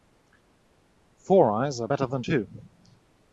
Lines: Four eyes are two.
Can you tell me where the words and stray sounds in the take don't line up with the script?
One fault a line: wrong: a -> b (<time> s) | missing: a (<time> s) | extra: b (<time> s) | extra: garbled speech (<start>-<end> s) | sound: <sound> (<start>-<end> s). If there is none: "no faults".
extra: better than (1.9 s)